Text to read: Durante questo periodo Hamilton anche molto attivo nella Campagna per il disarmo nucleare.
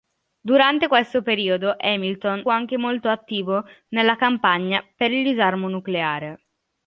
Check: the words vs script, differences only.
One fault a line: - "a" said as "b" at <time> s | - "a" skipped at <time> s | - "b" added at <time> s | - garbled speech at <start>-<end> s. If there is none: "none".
none